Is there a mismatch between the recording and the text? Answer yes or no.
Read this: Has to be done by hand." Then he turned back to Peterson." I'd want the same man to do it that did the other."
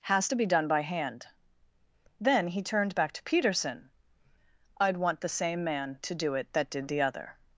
no